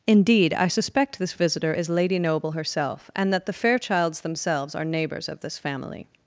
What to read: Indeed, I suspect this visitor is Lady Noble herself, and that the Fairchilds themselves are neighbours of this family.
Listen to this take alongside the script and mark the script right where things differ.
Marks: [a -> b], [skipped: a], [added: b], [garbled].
Indeed, I suspect this visitor is Lady Noble herself, and that the Fairchilds themselves are neighbours of this family.